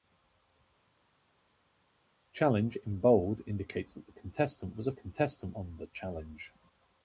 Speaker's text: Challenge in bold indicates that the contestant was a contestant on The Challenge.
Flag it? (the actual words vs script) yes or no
no